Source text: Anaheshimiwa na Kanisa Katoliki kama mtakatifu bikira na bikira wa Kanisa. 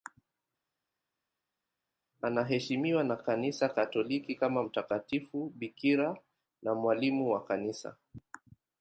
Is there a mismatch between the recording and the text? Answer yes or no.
yes